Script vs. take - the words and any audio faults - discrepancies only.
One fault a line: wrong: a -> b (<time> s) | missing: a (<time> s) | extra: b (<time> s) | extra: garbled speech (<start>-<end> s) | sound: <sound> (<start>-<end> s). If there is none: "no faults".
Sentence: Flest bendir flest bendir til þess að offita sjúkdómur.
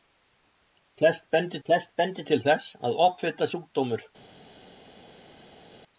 no faults